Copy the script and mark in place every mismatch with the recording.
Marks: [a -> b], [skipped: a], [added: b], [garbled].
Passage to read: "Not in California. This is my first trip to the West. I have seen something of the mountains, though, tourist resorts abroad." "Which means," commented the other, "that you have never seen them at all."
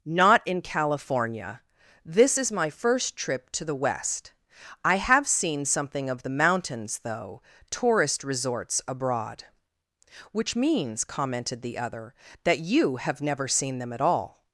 "Not in California. This is my first trip to the West. I have seen something of the mountains, though, tourist resorts abroad." "Which means," commented the other, "that you have never seen them at all."